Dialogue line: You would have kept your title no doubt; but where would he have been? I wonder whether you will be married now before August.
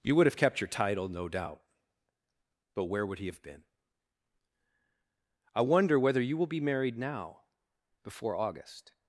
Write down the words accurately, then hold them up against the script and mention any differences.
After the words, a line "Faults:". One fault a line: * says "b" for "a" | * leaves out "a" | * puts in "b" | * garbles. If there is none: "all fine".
You would have kept your title no doubt; but where would he have been? I wonder whether you will be married now before August.
Faults:
all fine